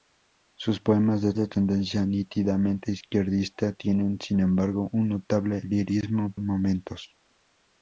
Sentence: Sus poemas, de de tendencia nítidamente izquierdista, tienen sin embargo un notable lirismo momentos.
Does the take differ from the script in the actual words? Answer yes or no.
no